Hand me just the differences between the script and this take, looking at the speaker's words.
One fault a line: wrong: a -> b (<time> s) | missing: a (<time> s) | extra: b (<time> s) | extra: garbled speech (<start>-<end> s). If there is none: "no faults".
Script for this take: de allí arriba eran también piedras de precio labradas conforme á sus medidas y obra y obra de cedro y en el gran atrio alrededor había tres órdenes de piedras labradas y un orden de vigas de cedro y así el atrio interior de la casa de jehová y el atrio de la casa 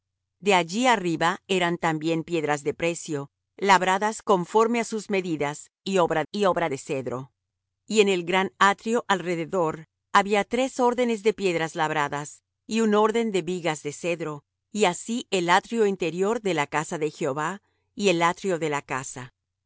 no faults